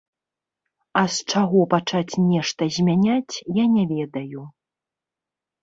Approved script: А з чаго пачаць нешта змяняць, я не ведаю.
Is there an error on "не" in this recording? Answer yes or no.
no